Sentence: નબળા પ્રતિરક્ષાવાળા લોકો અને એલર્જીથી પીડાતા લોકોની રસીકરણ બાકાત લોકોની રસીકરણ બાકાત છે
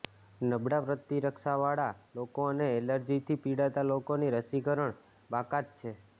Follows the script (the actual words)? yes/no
no